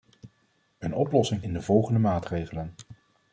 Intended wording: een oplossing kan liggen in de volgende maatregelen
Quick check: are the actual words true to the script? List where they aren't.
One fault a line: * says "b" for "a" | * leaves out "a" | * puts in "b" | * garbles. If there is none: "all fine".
* leaves out "kan liggen"